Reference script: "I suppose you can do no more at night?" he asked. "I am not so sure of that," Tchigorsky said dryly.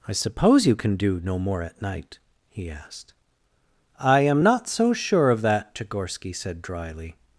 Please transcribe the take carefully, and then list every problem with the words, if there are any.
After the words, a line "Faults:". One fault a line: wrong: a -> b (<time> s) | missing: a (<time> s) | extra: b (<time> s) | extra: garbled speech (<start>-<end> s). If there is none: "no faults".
"I suppose you can do no more at night?" he asked. "I am not so sure of that," Tchigorsky said dryly.
Faults:
no faults